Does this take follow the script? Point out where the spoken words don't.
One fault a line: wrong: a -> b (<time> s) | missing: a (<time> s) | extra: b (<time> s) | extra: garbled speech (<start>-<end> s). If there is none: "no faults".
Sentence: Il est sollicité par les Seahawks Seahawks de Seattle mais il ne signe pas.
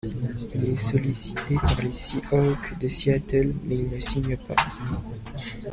missing: Seahawks (2.8 s)